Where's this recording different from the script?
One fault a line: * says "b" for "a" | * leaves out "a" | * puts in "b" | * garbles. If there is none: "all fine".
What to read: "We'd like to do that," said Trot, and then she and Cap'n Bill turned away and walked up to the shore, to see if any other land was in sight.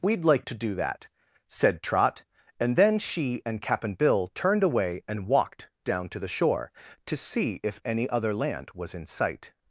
* says "down" for "up"